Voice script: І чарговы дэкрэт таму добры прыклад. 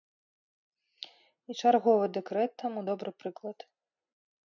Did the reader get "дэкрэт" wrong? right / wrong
right